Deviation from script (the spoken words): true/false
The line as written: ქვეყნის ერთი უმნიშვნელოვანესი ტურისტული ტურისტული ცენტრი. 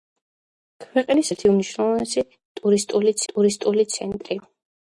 false